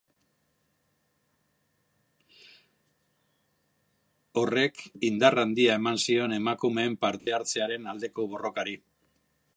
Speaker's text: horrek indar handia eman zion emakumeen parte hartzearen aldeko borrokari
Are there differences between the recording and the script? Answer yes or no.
no